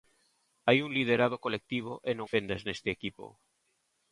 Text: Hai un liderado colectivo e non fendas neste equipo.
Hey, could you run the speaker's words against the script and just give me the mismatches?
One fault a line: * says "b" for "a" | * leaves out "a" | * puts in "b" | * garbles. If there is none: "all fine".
all fine